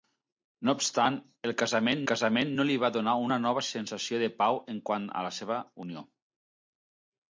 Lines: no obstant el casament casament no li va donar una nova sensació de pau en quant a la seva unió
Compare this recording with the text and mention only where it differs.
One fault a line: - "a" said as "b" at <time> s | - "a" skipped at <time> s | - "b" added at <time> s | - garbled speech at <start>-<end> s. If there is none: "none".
none